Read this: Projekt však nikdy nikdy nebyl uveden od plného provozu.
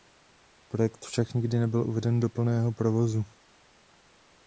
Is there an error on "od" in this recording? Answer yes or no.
yes